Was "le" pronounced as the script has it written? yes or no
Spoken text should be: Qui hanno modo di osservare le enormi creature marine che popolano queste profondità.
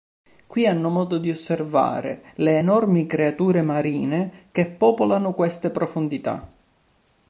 yes